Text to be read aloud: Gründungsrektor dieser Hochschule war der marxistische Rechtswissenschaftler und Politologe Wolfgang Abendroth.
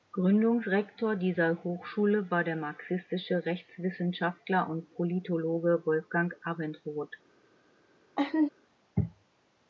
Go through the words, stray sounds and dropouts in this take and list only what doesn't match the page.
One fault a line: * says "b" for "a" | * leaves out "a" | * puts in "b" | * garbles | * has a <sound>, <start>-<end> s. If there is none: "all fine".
* has a laugh, 8.2-8.5 s